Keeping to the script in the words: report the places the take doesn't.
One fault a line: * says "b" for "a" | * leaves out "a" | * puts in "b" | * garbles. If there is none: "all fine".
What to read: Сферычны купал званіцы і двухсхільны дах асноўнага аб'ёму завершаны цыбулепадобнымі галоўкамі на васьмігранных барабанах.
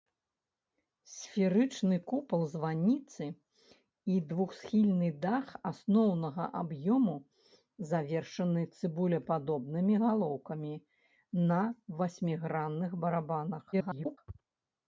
* garbles